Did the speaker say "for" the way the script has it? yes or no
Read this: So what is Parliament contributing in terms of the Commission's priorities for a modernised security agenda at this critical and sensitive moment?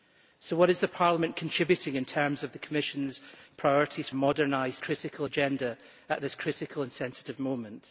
no